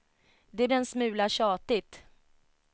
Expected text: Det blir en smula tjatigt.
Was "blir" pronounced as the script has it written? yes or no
no